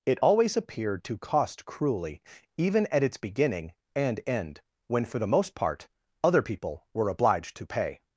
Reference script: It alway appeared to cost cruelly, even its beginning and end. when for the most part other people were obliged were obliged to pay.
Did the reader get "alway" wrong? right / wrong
wrong